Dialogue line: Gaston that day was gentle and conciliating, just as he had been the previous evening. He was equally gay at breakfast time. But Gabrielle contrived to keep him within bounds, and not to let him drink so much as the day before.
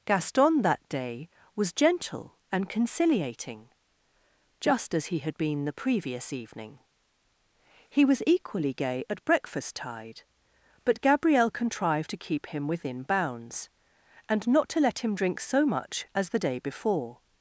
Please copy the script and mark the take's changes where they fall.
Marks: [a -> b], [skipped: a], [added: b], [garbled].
Gaston that day was gentle and conciliating, just as he had been the previous evening. He was equally gay at breakfast [time. -> tide] But Gabrielle contrived to keep him within bounds, and not to let him drink so much as the day before.